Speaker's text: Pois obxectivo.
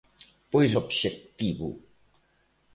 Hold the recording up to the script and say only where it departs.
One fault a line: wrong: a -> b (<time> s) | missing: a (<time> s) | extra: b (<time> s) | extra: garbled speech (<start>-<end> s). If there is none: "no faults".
no faults